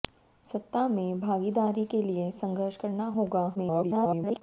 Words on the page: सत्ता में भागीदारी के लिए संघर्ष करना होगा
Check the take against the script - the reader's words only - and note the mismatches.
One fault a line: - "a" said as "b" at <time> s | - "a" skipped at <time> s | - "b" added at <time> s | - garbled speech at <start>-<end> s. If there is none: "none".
- garbled speech at 3.6-4.4 s